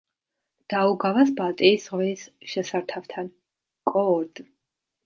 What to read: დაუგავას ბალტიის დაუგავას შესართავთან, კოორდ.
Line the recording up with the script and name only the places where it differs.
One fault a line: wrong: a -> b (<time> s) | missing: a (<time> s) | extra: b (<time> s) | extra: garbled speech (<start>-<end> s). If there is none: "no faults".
wrong: დაუგავას -> ზღვის (1.9 s)